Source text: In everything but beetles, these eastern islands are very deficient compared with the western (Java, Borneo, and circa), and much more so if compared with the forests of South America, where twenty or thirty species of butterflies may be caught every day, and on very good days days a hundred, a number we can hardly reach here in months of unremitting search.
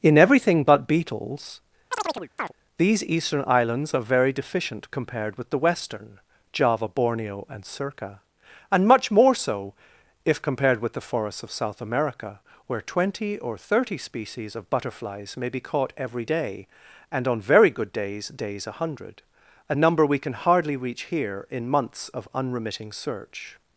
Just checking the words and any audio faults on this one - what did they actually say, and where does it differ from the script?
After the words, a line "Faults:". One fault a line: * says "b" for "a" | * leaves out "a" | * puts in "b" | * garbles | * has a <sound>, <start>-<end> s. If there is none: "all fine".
In everything but beetles, these eastern islands are very deficient compared with the western (Java, Borneo, and circa), and much more so if compared with the forests of South America, where twenty or thirty species of butterflies may be caught every day, and on very good days days a hundred, a number we can hardly reach here in months of unremitting search.
Faults:
* has a chirp, 1.9-2.5 s